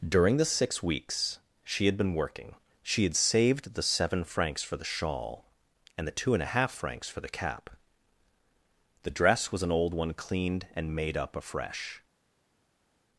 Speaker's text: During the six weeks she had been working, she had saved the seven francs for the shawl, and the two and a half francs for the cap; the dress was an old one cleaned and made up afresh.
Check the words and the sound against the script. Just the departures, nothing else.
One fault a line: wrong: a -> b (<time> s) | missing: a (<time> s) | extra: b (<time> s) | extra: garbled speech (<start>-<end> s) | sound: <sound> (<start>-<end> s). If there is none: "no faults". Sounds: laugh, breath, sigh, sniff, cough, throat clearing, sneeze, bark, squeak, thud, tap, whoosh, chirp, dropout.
no faults